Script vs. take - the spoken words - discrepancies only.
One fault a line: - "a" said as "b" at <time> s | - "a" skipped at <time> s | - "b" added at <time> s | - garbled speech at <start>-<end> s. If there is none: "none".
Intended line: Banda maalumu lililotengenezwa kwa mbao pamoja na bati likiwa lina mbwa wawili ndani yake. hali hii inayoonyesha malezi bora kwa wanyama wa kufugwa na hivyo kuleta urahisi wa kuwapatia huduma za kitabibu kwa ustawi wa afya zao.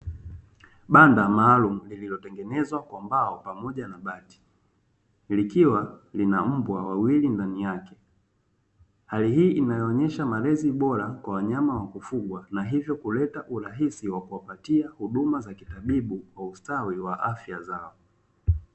none